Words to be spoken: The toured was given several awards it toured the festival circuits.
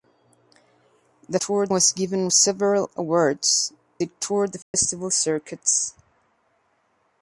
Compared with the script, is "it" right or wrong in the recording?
right